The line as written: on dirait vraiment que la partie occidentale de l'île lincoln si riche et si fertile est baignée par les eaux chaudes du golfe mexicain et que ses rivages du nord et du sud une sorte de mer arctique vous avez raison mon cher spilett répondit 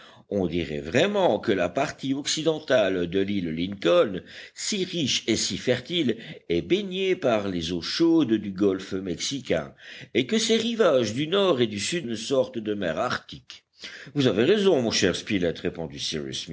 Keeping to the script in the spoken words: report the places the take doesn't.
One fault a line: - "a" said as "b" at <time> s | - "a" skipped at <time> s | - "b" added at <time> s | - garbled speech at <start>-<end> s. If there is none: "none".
none